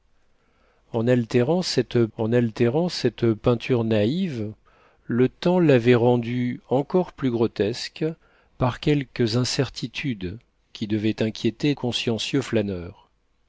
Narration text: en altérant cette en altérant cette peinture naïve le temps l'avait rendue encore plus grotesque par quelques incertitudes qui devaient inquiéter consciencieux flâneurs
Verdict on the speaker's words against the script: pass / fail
pass